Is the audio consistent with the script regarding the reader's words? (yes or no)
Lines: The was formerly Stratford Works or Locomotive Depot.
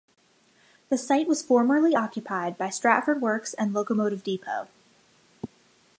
no